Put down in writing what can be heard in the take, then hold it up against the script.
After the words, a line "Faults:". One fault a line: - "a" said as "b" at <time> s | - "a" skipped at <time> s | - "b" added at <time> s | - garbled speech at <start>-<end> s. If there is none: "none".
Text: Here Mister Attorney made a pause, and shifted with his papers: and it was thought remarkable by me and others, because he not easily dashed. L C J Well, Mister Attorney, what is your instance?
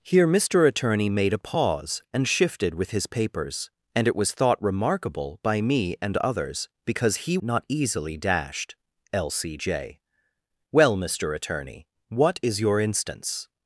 Here Mister Attorney made a pause, and shifted with his papers: and it was thought remarkable by me and others, because he not easily dashed. L C J Well, Mister Attorney, what is your instance?
Faults:
none